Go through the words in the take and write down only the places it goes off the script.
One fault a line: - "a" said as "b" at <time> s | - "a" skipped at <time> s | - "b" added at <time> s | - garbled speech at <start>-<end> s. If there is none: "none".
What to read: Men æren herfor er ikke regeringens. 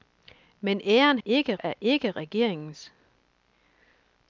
- "herfor" said as "ikke" at 1.2 s